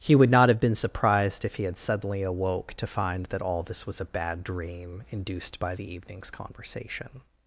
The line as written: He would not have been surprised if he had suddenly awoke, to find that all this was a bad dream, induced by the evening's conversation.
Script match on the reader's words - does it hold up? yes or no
yes